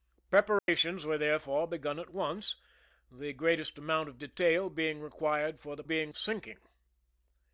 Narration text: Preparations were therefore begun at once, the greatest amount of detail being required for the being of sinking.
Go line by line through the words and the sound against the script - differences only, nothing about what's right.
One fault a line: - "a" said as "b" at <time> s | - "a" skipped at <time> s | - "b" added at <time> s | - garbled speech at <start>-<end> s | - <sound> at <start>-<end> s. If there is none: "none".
- dropout at 0.6-0.7 s